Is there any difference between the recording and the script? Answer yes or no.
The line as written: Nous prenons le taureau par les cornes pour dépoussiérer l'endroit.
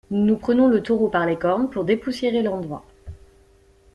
no